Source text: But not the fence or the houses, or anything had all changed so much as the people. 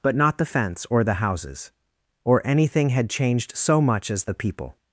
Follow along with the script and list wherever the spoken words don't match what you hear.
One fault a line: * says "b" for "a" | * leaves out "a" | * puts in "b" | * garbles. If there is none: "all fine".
* leaves out "all"